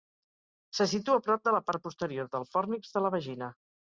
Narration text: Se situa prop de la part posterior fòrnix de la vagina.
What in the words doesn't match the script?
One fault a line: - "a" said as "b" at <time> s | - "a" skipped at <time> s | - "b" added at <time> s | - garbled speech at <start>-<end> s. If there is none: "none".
- "del" added at 2.4 s